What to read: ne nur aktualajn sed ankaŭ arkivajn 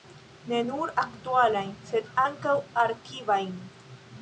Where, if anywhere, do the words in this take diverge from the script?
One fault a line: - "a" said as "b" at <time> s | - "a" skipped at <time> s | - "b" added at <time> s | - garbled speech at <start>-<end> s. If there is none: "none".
none